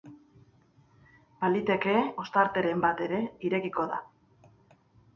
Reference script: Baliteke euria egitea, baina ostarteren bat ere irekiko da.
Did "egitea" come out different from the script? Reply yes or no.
yes